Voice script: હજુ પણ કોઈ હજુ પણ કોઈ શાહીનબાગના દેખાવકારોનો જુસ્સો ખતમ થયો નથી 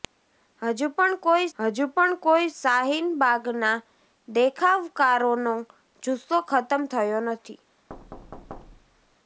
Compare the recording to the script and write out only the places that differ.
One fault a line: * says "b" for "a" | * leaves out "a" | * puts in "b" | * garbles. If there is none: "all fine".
all fine